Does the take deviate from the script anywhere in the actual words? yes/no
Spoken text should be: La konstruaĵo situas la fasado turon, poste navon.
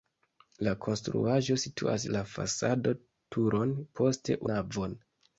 no